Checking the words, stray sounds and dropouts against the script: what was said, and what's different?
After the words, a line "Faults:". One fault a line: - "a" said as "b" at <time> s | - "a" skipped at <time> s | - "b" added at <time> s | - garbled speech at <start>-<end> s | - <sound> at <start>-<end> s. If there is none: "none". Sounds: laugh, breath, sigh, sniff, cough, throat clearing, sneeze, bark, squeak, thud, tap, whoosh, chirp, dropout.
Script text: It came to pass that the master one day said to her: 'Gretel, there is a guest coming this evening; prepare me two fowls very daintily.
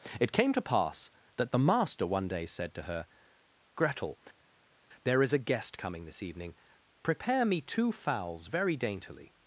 It came to pass that the master one day said to her: 'Gretel, there is a guest coming this evening; prepare me two fowls very daintily.
Faults:
none